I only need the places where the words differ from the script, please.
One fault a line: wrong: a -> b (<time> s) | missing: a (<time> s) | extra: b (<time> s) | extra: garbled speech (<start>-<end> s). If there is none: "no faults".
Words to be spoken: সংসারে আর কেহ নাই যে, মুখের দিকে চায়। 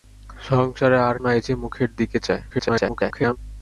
missing: কেহ (1.1 s)
extra: garbled speech (2.5-3.4 s)